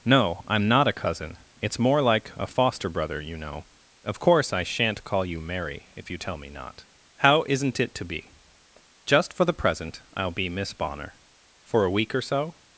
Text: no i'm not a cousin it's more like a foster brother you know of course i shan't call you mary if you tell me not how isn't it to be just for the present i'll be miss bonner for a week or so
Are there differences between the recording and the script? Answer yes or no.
no